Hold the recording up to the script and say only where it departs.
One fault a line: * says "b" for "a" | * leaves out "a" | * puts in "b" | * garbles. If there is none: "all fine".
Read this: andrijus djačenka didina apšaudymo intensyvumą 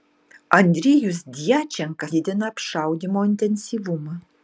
all fine